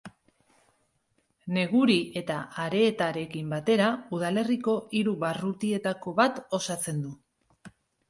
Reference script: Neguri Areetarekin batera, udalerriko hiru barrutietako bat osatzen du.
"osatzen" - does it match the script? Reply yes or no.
yes